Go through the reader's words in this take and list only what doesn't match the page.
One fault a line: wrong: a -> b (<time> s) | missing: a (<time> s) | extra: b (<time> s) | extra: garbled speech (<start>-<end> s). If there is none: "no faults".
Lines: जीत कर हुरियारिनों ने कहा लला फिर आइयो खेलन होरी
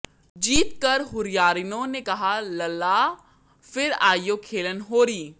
no faults